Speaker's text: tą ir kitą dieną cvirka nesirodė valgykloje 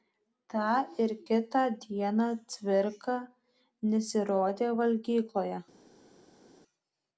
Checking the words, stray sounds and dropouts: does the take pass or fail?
pass